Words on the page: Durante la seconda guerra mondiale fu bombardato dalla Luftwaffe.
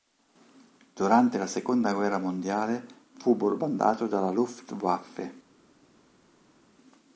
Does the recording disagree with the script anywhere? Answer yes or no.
no